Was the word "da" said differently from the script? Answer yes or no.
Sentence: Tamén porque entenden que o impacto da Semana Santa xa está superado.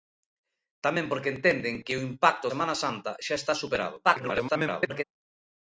yes